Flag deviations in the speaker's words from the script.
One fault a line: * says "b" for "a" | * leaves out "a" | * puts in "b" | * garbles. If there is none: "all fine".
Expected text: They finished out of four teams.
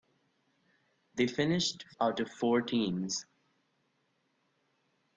all fine